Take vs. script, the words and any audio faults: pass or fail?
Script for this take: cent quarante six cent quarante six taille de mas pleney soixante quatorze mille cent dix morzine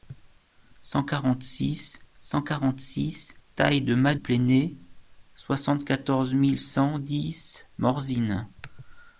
pass